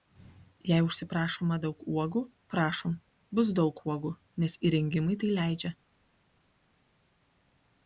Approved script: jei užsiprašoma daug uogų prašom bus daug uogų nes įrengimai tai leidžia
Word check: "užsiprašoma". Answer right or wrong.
right